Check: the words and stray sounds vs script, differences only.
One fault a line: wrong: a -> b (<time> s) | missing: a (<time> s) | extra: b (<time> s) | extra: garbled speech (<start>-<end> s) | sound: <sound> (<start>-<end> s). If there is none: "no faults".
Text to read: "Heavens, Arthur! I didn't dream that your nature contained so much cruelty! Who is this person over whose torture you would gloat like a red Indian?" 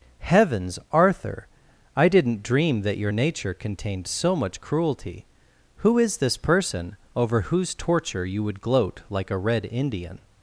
no faults